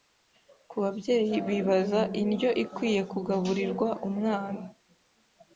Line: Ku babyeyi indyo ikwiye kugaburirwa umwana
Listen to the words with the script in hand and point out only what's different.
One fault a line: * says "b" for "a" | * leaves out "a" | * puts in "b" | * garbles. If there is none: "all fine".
* puts in "bibaza"